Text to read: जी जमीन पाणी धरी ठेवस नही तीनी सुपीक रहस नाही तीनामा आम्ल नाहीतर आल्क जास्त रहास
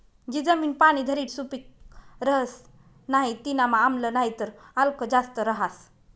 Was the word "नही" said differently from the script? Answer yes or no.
yes